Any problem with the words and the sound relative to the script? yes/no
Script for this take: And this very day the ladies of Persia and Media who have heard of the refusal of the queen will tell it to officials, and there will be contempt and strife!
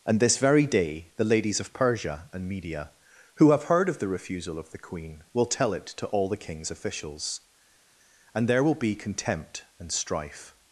yes